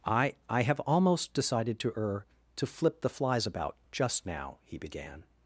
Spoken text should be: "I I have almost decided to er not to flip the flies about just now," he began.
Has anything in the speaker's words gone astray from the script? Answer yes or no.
yes